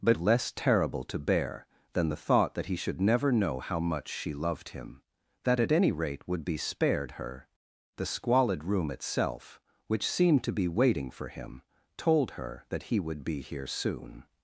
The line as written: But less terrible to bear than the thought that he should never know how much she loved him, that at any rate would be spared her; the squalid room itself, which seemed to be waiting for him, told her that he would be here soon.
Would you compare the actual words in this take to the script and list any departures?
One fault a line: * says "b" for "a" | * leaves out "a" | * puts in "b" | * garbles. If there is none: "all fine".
all fine